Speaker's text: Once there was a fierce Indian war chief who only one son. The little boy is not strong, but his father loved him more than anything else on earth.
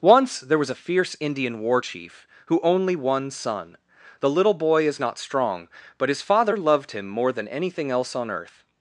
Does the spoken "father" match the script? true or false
true